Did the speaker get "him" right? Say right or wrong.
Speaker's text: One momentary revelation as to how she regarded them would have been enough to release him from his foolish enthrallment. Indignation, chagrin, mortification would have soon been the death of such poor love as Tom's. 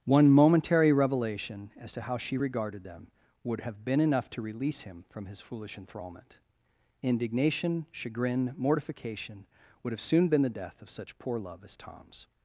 right